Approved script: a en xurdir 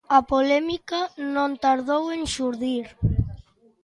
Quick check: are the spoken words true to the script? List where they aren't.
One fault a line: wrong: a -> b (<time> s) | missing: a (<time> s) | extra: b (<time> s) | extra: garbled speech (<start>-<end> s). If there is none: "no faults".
extra: polémica non tardou (0.3 s)